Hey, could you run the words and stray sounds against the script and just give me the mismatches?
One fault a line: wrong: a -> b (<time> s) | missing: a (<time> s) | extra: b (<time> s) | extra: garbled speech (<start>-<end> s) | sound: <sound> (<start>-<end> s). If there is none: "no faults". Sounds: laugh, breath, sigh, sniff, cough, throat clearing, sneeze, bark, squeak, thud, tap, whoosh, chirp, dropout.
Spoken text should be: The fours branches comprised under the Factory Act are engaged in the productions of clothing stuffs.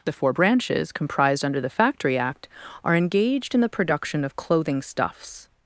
wrong: fours -> four (0.1 s)
wrong: productions -> production (3.7 s)